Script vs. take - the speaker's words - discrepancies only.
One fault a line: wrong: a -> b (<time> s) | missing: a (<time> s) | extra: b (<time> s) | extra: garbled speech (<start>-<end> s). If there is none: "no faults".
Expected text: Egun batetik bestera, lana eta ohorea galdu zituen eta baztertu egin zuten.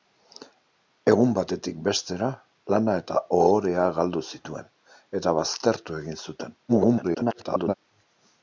extra: garbled speech (6.7-7.7 s)